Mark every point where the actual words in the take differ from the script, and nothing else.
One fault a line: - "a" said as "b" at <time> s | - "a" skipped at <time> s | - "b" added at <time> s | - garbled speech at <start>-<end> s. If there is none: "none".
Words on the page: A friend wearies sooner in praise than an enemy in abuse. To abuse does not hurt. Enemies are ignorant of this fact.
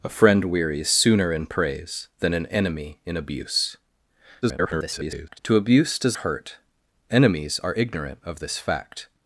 - garbled speech at 4.4-5.4 s
- "not" skipped at 6.2 s